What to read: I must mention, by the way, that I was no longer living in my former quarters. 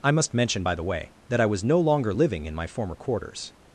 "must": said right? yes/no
yes